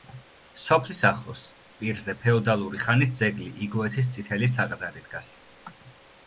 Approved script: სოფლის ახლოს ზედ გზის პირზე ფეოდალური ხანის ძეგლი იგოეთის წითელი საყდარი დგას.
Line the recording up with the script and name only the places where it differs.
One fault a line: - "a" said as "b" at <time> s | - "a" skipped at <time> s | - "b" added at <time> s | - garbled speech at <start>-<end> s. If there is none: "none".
- "ზედ გზის" skipped at 1.4 s